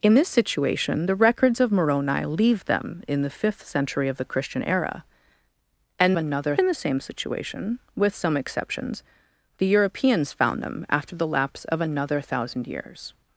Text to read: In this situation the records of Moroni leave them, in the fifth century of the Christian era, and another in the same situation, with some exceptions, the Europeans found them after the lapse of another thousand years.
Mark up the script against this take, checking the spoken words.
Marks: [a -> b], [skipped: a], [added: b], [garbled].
In this situation the records of Moroni leave them, in the fifth century of the Christian era, and another in the same situation, with some exceptions, the Europeans found them after the lapse of another thousand years.